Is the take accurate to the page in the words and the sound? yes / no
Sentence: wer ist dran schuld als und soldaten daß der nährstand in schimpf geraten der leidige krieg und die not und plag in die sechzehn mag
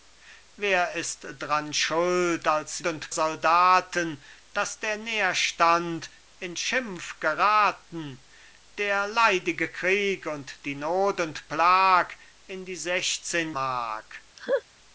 no